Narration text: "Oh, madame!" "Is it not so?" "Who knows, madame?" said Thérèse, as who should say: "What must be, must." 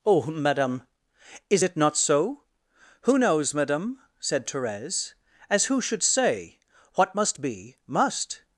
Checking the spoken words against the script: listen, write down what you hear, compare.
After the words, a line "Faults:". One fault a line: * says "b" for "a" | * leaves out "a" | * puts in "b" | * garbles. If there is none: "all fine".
"Oh, madame!" "Is it not so?" "Who knows, madame?" said Thérèse, as who should say: "What must be, must."
Faults:
all fine